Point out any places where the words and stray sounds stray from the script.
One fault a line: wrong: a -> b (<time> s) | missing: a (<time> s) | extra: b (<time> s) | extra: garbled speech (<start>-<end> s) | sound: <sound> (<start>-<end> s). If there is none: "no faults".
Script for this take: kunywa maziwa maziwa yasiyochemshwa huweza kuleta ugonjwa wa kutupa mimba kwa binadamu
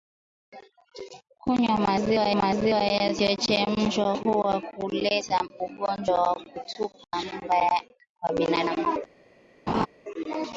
sound: laugh (9.7-9.9 s)